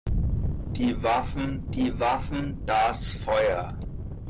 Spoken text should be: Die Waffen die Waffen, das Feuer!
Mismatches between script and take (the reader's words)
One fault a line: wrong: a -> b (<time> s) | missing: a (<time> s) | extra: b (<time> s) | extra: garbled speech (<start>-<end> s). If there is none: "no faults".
no faults